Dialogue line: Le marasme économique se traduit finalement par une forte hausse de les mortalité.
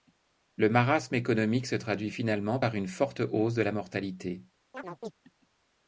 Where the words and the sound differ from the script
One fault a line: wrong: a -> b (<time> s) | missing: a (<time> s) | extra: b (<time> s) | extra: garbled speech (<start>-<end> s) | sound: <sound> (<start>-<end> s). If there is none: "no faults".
wrong: les -> la (3.6 s)
sound: chirp (4.7-5.1 s)